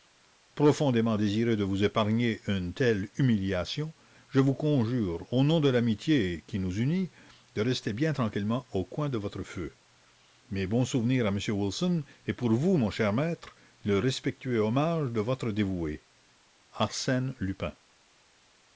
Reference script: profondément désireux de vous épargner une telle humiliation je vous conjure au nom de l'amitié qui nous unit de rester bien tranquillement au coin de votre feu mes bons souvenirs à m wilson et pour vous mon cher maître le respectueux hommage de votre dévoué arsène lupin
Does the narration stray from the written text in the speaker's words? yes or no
no